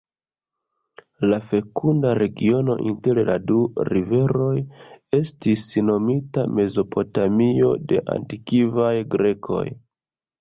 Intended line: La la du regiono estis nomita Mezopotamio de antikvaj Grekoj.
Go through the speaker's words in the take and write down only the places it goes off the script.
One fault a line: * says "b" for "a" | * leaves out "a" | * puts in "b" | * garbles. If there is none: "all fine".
* puts in "fekunda regiono inter"
* says "riveroj" for "regiono"